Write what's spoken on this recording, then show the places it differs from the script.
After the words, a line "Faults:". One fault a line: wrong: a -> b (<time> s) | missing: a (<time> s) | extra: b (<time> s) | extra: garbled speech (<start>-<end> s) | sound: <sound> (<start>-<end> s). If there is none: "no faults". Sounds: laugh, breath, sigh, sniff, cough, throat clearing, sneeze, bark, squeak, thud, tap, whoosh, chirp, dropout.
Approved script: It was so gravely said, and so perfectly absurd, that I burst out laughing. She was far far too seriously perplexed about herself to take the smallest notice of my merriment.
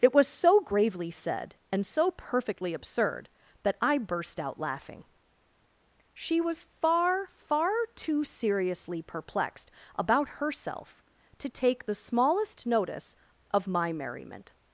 It was so gravely said, and so perfectly absurd, that I burst out laughing. She was far far too seriously perplexed about herself to take the smallest notice of my merriment.
Faults:
no faults